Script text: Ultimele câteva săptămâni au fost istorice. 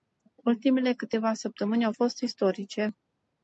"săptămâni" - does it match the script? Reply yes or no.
yes